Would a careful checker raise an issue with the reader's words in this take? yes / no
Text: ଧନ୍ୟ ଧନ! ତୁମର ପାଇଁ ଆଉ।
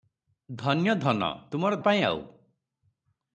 no